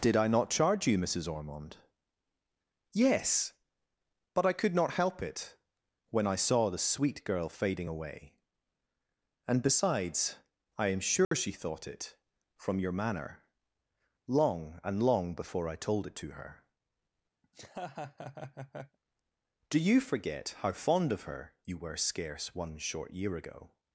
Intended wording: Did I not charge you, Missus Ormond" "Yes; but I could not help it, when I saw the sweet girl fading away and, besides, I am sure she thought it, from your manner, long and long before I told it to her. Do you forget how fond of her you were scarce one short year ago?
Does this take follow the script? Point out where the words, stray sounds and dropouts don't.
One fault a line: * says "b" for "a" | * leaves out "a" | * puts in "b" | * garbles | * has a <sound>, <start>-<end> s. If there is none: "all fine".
* has a dropout, 11.2-11.3 s
* has a laugh, 17.4-19.0 s